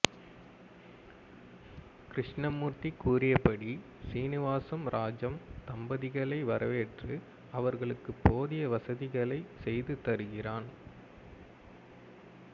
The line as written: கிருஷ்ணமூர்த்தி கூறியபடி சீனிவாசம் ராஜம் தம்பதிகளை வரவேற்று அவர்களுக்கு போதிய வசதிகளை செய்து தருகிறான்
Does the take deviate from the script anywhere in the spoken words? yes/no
no